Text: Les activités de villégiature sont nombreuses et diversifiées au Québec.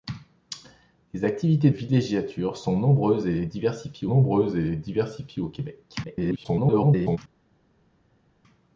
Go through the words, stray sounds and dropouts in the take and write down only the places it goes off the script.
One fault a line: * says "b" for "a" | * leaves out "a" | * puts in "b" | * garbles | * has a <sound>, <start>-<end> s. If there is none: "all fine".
* leaves out "de"
* puts in "nombreuses et diversifiées"
* garbles